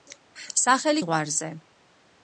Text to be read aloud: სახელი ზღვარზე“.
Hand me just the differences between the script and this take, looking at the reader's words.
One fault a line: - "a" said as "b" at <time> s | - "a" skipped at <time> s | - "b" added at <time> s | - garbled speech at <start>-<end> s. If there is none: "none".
none